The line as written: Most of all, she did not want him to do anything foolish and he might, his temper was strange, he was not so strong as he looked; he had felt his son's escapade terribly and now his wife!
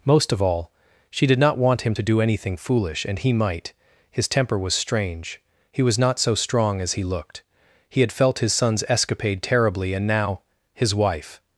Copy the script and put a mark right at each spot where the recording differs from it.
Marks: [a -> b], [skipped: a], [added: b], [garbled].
Most of all, she did not want him to do anything foolish and he might, his temper was strange, he was not so strong as he looked; he had felt his son's escapade terribly and now his wife!